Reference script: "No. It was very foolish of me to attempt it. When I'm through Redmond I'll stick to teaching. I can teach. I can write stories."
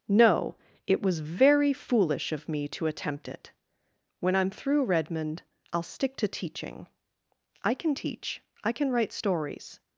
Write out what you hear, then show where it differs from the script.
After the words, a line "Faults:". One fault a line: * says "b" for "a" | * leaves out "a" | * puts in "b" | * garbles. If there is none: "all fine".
"No. It was very foolish of me to attempt it. When I'm through Redmond I'll stick to teaching. I can teach. I can write stories."
Faults:
all fine